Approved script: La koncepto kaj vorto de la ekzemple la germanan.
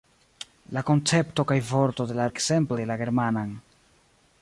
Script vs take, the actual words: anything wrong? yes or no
no